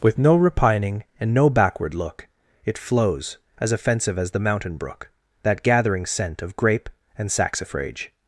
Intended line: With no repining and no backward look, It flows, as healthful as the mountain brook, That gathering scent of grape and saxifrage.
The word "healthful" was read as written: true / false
false